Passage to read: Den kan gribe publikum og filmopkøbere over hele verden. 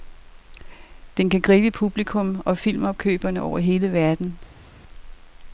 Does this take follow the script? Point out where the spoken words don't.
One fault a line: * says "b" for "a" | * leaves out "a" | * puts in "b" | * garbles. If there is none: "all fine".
all fine